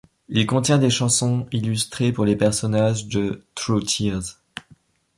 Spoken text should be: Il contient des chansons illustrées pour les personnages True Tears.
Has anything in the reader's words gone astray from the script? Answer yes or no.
yes